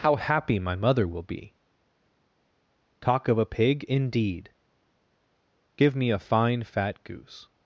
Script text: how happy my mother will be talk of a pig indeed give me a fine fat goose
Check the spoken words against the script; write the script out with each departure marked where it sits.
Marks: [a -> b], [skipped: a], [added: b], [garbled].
how happy my mother will be talk of a pig indeed give me a fine fat goose